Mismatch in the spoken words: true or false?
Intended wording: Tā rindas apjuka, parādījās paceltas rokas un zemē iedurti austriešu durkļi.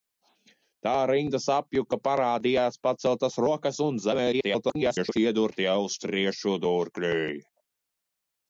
true